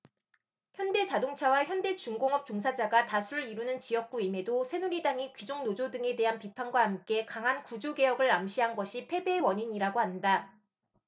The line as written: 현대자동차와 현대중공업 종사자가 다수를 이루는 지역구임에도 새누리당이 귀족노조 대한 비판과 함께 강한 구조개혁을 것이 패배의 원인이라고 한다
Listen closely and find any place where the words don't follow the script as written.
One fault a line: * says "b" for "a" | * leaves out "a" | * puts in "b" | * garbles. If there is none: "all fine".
* puts in "등에"
* puts in "암시한"